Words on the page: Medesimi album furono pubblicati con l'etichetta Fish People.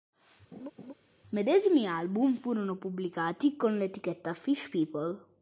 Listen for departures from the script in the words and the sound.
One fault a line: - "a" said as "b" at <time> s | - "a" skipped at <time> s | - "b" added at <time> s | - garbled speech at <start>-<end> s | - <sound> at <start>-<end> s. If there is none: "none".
- laugh at 0.5-0.9 s